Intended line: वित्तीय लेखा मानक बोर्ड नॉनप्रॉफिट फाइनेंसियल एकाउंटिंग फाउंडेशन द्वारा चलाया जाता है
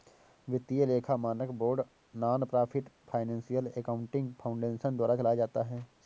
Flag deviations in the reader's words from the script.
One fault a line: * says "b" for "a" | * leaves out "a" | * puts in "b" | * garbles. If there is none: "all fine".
all fine